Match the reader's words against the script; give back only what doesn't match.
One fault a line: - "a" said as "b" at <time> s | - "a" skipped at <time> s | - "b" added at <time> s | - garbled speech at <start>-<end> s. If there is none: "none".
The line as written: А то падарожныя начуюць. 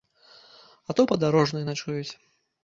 none